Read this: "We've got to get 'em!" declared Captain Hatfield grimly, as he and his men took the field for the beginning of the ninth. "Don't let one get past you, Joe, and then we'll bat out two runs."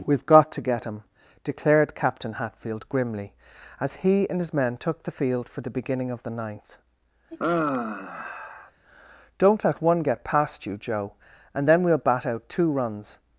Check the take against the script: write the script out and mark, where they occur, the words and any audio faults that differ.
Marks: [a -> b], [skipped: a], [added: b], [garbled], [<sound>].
"We've got to get ['em!" -> him] declared Captain Hatfield grimly, as he and his men took the field for the beginning of the ninth. [sigh] "Don't let one get past you, Joe, and then we'll bat out two runs."